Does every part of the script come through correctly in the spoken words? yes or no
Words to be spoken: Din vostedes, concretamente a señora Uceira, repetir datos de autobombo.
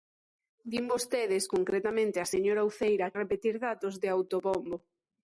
yes